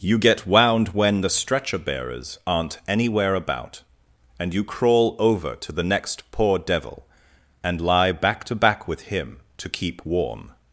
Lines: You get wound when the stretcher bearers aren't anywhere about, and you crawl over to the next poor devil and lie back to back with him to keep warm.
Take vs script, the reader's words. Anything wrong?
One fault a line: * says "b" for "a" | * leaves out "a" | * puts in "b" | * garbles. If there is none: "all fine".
all fine